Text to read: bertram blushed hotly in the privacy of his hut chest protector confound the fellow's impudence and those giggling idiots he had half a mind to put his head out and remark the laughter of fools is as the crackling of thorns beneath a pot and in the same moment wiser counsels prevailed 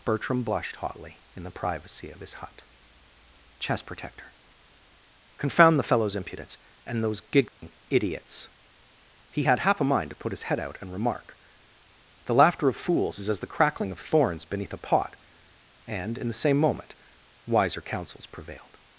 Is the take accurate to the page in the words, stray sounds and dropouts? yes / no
no